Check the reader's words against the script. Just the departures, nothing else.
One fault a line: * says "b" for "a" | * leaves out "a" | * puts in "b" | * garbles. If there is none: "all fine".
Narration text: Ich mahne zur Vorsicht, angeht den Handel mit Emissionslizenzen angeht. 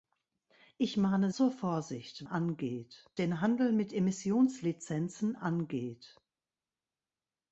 all fine